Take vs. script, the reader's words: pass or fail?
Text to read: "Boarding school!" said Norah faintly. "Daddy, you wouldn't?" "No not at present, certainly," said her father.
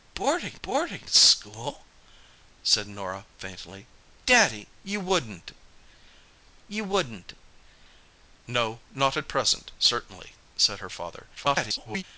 fail